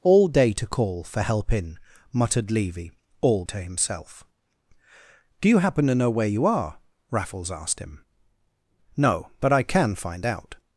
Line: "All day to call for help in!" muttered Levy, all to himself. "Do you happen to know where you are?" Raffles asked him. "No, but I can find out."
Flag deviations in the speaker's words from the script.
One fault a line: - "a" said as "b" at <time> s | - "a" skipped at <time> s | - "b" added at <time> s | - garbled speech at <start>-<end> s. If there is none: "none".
none